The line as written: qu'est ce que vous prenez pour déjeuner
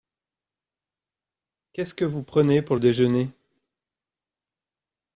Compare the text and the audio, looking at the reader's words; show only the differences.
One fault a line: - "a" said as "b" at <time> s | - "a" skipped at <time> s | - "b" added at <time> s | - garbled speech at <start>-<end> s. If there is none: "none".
none